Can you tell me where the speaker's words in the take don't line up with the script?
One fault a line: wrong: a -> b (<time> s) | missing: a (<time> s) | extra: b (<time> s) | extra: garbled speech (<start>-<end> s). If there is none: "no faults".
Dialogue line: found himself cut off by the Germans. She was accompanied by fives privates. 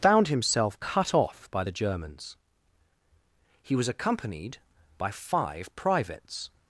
wrong: She -> He (3.6 s)
wrong: fives -> five (5.1 s)